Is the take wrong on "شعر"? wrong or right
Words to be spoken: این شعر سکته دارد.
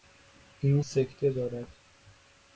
wrong